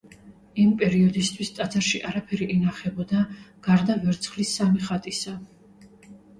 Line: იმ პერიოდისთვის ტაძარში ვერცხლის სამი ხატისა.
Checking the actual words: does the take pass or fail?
fail